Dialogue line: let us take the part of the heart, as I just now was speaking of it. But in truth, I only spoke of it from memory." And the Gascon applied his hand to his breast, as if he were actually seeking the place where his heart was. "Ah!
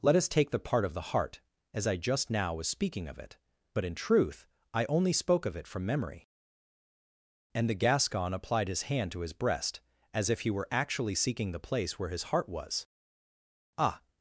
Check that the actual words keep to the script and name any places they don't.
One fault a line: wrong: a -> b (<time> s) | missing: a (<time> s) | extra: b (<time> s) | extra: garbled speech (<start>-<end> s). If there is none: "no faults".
no faults